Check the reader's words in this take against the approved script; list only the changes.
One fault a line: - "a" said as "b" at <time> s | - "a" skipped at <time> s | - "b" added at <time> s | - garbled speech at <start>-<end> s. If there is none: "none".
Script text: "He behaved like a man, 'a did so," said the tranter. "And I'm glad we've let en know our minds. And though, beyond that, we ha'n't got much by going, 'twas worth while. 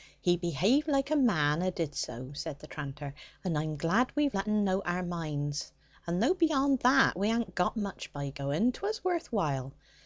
none